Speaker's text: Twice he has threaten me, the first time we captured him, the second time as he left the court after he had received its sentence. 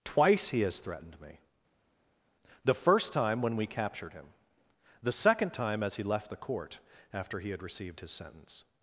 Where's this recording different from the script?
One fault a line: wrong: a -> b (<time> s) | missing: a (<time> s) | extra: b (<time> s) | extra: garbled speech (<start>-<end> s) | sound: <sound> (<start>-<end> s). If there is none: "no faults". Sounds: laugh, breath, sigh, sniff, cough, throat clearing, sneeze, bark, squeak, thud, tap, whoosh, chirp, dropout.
wrong: threaten -> threatened (0.8 s)
extra: when (3.4 s)
wrong: its -> his (8.0 s)